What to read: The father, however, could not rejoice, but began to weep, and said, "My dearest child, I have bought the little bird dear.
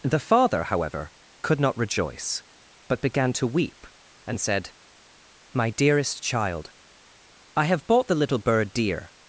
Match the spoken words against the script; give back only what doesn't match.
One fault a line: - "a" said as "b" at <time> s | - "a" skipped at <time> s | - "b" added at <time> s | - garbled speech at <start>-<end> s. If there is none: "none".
none